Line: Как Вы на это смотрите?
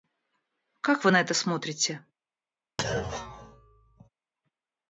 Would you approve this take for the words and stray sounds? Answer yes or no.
no